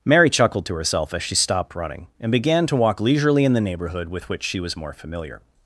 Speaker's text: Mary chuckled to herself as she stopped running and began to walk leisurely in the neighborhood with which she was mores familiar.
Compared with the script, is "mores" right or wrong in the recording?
wrong